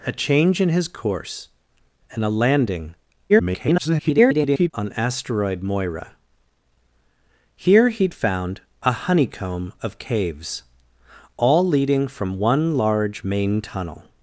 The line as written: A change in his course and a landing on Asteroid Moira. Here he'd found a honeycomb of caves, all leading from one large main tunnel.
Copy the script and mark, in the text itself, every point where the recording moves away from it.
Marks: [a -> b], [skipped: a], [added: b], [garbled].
A change in his course and a landing [garbled] on Asteroid Moira. Here he'd found a honeycomb of caves, all leading from one large main tunnel.